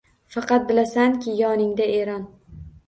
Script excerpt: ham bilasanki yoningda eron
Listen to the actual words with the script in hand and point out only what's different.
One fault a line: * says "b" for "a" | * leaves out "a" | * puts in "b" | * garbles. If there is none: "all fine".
* says "faqat" for "ham"